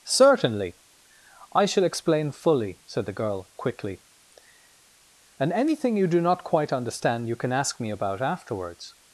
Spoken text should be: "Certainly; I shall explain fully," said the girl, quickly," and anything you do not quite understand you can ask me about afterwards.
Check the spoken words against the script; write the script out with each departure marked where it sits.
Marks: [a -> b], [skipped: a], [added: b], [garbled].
"Certainly; I shall explain fully," said the girl, quickly," and anything you do not quite understand you can ask me about afterwards.